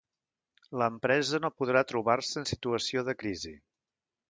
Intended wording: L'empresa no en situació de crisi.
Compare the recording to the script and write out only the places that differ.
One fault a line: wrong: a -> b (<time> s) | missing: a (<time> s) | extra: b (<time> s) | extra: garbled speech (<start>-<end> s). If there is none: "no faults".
extra: podrà trobar se (1.6 s)